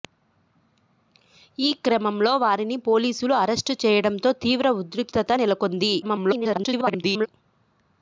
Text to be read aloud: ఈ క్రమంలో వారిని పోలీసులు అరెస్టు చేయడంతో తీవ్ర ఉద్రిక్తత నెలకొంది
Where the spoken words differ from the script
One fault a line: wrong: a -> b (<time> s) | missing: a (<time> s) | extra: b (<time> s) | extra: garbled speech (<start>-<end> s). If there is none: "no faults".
extra: garbled speech (6.0-7.3 s)